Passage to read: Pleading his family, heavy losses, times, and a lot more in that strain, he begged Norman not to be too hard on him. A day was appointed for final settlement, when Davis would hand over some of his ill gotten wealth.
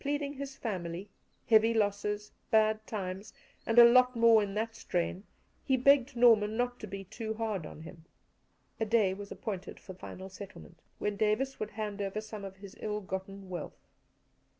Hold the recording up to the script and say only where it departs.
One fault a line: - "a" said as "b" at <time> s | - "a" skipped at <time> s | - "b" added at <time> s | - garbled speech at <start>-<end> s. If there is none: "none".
- "bad" added at 2.5 s